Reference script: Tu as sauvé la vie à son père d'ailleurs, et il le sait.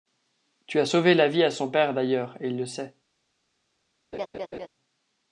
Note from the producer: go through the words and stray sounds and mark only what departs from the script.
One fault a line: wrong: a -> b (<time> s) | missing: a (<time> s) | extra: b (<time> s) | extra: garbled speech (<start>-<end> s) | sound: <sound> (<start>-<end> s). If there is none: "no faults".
sound: laugh (4.1-4.7 s)